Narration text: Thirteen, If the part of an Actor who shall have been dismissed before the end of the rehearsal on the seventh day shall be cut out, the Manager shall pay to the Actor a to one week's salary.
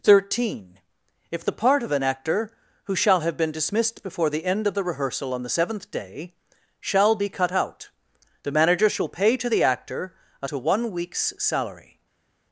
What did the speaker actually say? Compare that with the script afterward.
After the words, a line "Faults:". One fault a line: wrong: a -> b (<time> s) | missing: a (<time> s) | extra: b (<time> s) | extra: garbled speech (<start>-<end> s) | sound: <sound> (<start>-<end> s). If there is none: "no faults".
Thirteen, If the part of an Actor who shall have been dismissed before the end of the rehearsal on the seventh day shall be cut out, the Manager shall pay to the Actor a to one week's salary.
Faults:
no faults